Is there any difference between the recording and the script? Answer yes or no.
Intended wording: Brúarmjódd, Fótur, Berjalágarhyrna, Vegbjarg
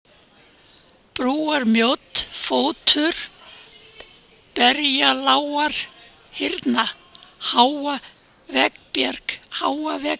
yes